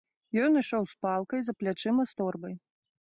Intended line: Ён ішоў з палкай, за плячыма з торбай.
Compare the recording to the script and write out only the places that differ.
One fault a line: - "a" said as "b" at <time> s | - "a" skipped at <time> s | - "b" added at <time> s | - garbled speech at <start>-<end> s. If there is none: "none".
none